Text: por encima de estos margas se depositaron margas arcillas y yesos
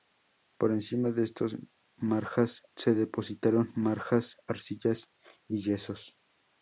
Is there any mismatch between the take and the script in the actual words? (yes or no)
no